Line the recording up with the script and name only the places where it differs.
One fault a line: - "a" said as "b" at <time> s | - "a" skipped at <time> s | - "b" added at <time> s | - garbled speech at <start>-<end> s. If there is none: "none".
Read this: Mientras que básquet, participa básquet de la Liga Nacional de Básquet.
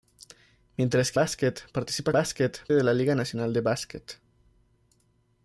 none